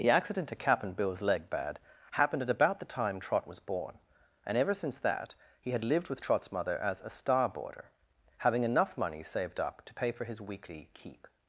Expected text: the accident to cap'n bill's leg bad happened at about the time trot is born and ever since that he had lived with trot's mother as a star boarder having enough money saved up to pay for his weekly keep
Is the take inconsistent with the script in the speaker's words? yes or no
yes